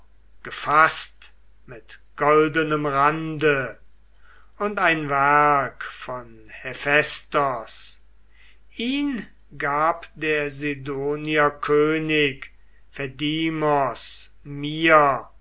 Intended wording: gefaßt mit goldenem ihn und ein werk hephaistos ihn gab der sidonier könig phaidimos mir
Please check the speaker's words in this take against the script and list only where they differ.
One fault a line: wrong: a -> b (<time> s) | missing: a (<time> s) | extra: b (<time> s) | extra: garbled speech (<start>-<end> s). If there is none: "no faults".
wrong: ihn -> rande (2.9 s)
extra: von (5.8 s)